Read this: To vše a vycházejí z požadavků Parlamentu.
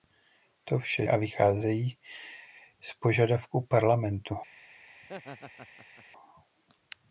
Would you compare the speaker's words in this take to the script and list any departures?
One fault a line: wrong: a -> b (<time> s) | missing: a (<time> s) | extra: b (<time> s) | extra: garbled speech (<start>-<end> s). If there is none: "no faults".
no faults